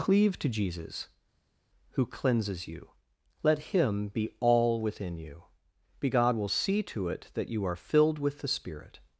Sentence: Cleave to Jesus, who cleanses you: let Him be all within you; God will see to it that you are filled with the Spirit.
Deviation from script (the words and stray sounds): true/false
true